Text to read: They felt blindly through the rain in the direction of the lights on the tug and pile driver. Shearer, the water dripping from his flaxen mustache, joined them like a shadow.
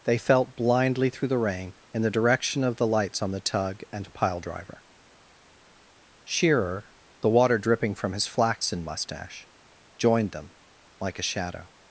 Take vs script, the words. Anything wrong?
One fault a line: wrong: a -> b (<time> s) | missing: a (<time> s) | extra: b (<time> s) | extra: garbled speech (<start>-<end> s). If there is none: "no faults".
no faults